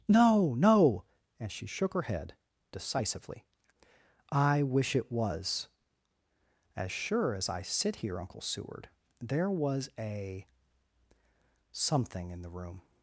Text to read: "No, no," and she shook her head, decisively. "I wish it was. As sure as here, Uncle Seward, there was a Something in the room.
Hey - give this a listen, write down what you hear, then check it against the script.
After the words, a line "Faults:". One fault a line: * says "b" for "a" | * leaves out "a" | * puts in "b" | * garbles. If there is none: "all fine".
"No, no," and she shook her head, decisively. "I wish it was. As sure as I sit here, Uncle Seward, there was a Something in the room.
Faults:
* puts in "I sit"